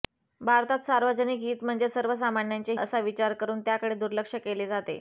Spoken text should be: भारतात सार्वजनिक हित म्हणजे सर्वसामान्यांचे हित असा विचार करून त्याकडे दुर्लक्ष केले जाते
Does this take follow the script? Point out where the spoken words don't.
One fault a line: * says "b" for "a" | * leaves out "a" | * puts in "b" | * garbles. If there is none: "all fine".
* leaves out "हित"